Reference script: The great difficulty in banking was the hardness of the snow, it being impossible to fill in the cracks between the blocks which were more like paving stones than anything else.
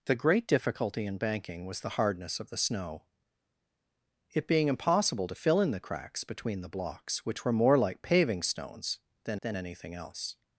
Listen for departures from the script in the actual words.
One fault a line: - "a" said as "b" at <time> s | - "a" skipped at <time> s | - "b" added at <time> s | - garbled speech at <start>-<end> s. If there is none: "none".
- "than" added at 9.4 s